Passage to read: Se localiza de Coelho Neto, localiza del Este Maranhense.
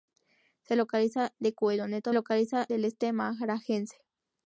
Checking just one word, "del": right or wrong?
right